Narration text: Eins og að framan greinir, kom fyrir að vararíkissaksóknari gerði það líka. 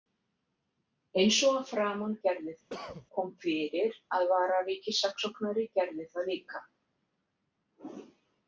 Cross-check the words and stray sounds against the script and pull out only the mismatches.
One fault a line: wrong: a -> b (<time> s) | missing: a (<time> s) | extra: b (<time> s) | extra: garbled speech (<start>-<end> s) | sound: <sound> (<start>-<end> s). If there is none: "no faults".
wrong: greinir -> gerði (2.3 s)
sound: cough (2.7-3.1 s)